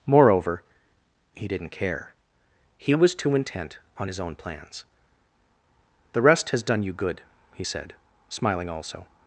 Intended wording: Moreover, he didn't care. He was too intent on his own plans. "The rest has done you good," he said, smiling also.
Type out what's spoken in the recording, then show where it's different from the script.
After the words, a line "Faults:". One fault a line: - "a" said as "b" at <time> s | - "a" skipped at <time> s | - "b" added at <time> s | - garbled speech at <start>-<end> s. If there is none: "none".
Moreover, he didn't care. He was too intent on his own plans. "The rest has done you good," he said, smiling also.
Faults:
none